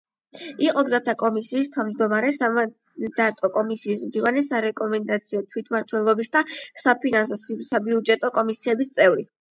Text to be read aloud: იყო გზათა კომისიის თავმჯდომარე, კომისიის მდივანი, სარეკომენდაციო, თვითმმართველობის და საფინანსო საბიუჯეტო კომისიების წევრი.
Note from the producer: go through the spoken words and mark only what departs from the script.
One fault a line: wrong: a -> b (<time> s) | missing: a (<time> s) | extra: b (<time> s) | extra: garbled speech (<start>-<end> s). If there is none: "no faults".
extra: სამანდატო (2.4 s)